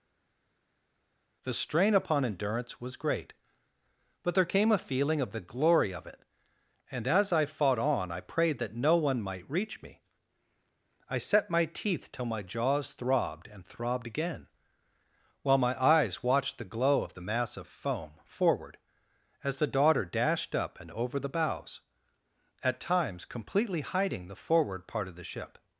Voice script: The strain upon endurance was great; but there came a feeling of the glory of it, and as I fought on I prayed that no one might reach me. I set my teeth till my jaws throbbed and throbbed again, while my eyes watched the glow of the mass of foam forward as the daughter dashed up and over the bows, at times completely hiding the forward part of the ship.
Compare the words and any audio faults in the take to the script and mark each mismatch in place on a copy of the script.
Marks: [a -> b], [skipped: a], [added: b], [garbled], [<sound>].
The strain upon endurance was great; but there came a feeling of the glory of it, and as I fought on I prayed that no one might reach me. I set my teeth till my jaws throbbed and throbbed again, while my eyes watched the glow of the mass of foam forward as the daughter dashed up and over the bows, at times completely hiding the forward part of the ship.